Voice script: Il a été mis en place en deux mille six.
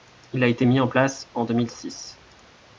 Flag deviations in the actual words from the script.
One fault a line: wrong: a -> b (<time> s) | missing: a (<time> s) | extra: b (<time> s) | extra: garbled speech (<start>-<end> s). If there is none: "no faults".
no faults